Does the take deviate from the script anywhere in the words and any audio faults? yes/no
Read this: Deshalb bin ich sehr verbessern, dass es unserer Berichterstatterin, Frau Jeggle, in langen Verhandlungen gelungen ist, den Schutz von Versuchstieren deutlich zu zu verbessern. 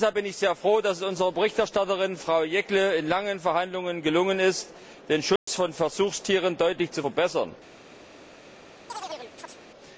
yes